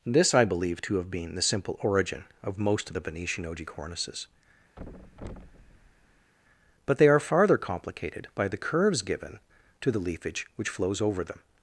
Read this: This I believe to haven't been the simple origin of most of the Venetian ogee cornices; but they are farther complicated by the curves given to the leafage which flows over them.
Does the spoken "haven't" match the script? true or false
false